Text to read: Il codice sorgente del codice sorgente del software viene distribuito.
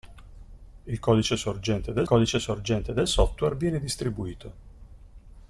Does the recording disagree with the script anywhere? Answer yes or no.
no